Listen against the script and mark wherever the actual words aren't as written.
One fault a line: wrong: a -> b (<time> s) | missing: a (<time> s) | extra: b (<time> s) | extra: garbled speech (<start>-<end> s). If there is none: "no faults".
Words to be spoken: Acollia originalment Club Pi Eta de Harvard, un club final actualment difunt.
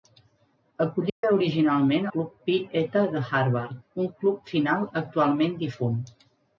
no faults